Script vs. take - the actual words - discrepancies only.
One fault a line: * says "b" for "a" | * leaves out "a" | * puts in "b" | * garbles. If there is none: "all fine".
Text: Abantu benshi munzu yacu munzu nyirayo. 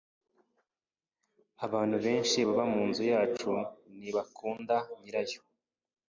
* puts in "baba"
* says "ntibakunda" for "munzu"